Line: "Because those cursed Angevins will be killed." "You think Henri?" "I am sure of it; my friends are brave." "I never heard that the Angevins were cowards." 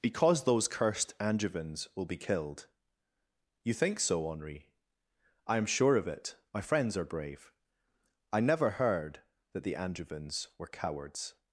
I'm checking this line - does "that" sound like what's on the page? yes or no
yes